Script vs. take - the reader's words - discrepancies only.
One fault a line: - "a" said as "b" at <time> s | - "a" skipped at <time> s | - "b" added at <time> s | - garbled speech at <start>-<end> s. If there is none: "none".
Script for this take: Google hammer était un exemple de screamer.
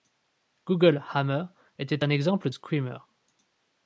- "de" skipped at 2.5 s